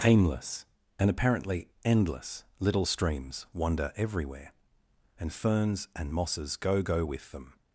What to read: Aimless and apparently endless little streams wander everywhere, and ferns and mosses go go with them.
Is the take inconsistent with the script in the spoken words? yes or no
no